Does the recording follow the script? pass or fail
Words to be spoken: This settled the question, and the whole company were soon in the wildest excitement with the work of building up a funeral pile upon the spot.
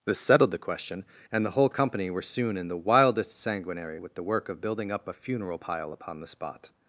fail